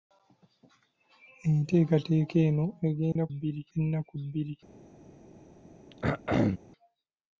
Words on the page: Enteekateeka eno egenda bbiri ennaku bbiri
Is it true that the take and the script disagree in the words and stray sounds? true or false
true